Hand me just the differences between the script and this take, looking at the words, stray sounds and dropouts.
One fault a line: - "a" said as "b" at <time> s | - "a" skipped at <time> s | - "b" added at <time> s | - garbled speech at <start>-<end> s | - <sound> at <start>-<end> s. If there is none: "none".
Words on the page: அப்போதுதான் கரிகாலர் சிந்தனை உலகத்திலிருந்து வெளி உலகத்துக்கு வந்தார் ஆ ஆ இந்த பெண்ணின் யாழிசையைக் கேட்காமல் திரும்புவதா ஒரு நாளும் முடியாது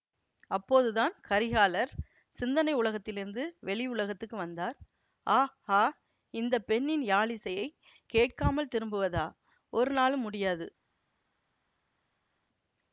none